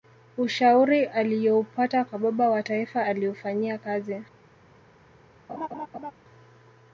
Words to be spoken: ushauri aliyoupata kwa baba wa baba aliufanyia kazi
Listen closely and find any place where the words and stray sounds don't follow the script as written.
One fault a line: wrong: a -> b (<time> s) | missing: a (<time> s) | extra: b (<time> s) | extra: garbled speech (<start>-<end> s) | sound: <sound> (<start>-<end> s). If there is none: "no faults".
wrong: baba -> taifa (2.6 s)
sound: laugh (5.5-6.1 s)